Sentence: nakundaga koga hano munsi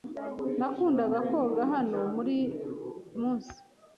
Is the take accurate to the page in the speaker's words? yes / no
yes